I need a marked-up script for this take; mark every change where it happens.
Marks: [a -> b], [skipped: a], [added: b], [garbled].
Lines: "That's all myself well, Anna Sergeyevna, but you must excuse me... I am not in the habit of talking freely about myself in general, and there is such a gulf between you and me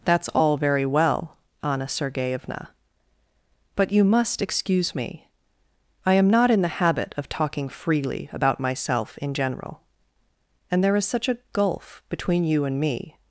"That's all [myself -> very] well, Anna Sergeyevna, but you must excuse me... I am not in the habit of talking freely about myself in general, and there is such a gulf between you and me